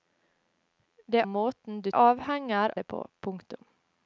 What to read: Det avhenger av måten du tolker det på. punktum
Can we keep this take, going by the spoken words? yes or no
no